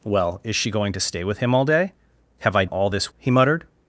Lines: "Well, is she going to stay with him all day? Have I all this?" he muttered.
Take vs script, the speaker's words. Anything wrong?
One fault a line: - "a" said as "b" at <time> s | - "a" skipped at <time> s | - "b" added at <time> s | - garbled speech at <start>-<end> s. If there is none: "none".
none